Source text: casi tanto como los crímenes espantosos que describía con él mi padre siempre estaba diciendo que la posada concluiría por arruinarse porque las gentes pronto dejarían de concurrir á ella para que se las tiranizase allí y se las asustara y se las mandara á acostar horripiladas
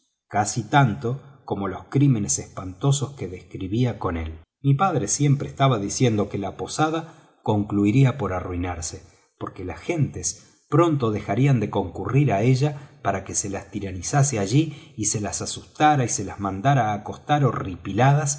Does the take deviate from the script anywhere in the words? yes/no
no